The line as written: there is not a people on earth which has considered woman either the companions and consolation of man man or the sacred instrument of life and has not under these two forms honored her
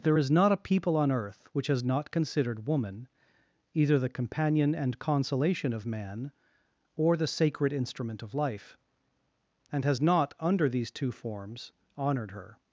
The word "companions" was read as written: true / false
false